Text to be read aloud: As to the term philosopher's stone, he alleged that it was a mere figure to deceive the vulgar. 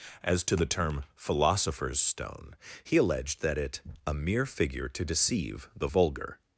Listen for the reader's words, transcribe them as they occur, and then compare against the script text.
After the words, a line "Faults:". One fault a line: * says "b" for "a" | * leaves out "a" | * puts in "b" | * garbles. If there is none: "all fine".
As to the term philosopher's stone, he alleged that it a mere figure to deceive the vulgar.
Faults:
* leaves out "was"